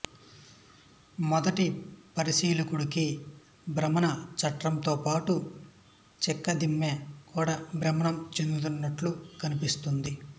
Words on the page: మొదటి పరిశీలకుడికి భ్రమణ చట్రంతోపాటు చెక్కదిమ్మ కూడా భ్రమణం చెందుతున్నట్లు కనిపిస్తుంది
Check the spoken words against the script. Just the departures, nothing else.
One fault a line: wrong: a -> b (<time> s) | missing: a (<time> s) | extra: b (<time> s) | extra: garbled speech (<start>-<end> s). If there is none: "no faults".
no faults